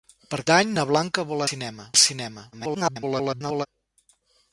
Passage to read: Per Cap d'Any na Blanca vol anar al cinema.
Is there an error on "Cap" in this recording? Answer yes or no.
yes